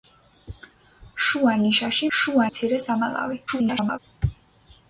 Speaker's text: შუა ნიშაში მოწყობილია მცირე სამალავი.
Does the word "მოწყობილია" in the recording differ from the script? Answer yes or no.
yes